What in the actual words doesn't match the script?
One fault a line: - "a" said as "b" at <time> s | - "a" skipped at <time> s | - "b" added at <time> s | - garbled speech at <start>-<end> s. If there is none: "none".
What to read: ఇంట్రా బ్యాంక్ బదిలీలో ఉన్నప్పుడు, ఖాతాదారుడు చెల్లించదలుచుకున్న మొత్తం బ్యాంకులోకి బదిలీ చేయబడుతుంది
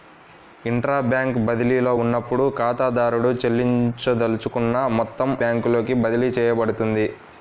none